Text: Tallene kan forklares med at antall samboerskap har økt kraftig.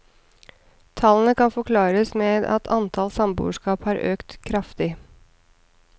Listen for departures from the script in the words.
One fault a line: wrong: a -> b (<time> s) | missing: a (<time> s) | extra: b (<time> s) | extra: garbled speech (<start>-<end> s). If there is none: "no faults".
no faults